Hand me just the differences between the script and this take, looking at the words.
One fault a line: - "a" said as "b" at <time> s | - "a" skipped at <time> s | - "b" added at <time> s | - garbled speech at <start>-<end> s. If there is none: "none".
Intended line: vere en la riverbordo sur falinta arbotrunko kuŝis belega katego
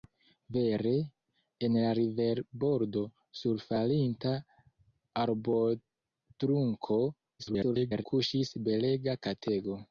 - garbled speech at 7.4-8.0 s